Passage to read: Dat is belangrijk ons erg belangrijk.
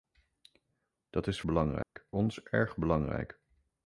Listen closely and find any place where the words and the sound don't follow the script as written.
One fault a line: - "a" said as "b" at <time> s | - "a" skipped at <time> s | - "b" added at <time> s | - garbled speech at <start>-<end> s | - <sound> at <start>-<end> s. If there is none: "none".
- dropout at 1.8-2.0 s